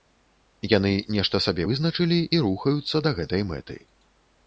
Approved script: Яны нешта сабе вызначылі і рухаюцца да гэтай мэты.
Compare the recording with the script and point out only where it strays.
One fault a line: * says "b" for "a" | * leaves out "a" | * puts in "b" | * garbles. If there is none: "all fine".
all fine